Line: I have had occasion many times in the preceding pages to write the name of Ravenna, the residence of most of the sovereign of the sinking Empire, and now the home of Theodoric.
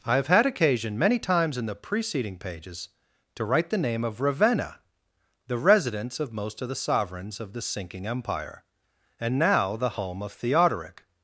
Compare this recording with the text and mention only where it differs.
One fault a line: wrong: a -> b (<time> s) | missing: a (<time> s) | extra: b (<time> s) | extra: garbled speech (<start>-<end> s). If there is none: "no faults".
wrong: sovereign -> sovereigns (6.8 s)